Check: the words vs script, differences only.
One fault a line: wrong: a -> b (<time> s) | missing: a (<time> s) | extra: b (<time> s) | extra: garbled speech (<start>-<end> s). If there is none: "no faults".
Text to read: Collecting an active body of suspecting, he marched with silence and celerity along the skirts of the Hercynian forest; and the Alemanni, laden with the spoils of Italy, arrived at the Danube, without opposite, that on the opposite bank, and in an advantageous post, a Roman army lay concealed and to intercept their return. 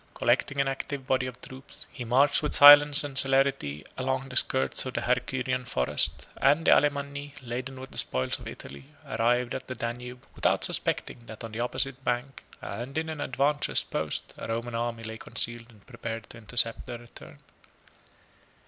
wrong: suspecting -> troops (1.4 s)
wrong: opposite -> suspecting (10.6 s)
extra: prepared (15.9 s)